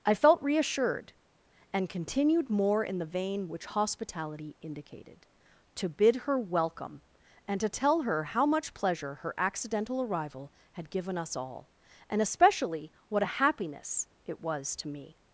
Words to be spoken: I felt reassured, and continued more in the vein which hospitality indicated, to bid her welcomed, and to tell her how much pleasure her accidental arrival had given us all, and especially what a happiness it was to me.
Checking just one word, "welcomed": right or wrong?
wrong